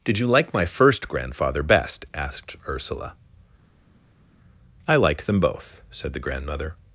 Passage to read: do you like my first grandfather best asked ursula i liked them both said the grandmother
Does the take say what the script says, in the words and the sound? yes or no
no